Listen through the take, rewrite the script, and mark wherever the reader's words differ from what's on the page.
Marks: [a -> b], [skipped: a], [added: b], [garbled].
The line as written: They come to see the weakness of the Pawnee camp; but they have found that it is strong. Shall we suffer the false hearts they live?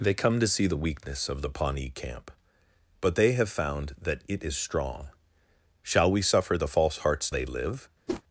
They come to see the weakness of the Pawnee camp; but they have found that it is strong. Shall we suffer the false hearts they live?